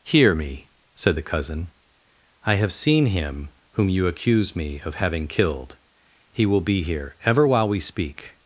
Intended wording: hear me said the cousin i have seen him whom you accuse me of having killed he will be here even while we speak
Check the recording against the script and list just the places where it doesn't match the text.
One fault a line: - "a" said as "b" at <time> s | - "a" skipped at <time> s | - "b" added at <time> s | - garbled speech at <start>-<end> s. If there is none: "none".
- "even" said as "ever" at 7.2 s